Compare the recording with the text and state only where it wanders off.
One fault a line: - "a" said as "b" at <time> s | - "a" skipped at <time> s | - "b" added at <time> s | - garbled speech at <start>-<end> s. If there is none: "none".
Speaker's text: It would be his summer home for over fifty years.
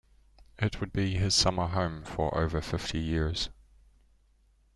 none